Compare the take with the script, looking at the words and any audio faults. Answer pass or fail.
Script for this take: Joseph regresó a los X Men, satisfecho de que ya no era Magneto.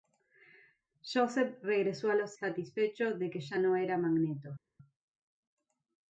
fail